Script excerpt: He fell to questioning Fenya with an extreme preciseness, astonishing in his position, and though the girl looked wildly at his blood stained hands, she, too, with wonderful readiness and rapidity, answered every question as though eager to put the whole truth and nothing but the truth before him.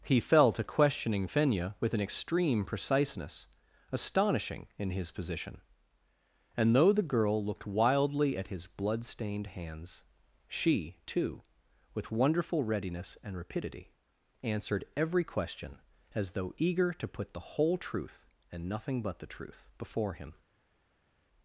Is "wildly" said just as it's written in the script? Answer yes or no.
yes